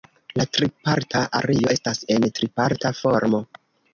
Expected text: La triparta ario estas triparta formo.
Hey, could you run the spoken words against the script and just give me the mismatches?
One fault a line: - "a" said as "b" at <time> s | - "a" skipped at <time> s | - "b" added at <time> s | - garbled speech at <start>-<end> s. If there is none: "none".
- "en" added at 2.2 s